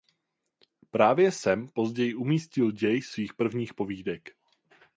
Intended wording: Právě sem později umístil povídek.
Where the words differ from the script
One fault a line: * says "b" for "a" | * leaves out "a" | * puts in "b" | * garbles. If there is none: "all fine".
* puts in "děj svých prvních"